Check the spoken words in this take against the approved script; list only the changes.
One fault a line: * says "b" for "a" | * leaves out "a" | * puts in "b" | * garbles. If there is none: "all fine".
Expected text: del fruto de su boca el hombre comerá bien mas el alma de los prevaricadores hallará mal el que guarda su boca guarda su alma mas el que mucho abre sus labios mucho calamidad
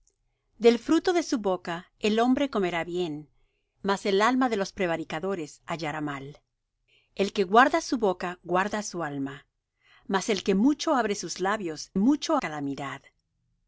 all fine